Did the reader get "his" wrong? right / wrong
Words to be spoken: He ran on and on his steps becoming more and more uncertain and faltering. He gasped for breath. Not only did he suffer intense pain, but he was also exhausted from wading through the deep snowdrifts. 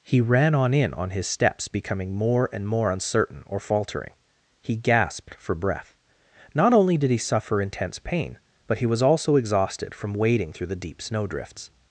right